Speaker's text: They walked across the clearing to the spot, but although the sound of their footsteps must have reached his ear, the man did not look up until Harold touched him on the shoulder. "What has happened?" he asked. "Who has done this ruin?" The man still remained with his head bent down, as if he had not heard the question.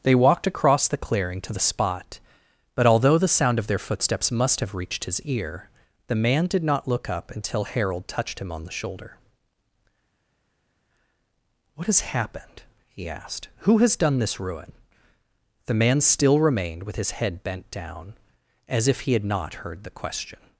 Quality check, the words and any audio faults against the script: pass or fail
pass